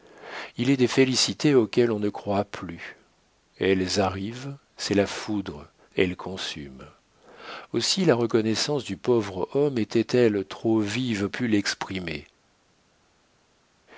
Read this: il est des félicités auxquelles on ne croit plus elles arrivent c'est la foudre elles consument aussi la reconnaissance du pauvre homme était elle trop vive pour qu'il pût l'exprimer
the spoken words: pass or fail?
fail